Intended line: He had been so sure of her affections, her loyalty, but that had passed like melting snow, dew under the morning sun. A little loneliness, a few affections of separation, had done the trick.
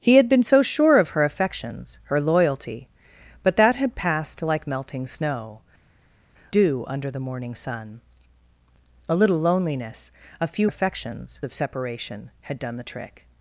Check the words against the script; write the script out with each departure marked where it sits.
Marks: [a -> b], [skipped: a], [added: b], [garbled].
He had been so sure of her affections, her loyalty, but that had passed like melting snow, dew under the morning sun. A little loneliness, a few affections of separation, had done the trick.